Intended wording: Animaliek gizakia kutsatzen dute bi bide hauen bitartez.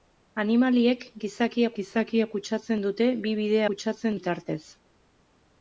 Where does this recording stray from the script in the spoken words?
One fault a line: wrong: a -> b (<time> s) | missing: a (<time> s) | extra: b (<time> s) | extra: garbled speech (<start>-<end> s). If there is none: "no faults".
extra: gizakia (1.8 s)
wrong: hauen -> kutsatzen (3.7 s)